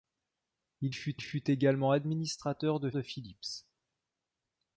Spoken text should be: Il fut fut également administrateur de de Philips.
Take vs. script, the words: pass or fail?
pass